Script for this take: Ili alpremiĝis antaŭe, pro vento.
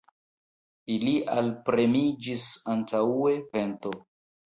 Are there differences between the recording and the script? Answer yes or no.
yes